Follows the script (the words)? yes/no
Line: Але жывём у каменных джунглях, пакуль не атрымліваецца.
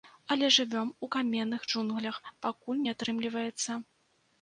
yes